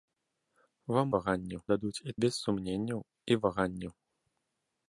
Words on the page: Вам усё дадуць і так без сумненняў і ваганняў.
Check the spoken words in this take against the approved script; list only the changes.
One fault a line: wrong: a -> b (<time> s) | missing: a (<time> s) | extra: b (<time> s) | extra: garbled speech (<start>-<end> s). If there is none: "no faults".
wrong: усё -> ваганняў (1.2 s)
missing: так (2.1 s)